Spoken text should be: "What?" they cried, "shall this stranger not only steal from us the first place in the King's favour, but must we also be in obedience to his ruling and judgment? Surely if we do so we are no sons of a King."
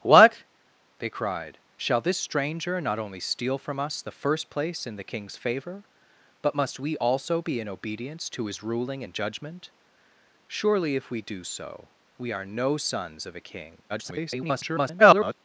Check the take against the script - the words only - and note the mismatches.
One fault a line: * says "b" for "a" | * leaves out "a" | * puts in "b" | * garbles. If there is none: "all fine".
* garbles